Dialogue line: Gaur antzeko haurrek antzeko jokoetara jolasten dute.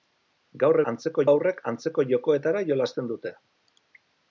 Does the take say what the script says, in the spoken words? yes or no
yes